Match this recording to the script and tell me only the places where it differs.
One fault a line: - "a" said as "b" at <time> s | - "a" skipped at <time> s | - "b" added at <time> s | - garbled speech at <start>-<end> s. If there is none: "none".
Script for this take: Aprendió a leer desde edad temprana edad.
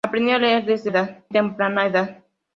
none